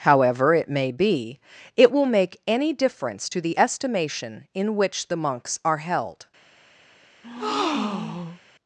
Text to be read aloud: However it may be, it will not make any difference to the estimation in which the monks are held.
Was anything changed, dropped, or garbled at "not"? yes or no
yes